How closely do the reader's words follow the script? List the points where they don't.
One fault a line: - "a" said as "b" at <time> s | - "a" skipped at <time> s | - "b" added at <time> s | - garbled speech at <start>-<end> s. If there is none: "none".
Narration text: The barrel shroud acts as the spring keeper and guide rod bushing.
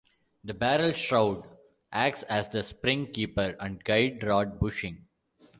none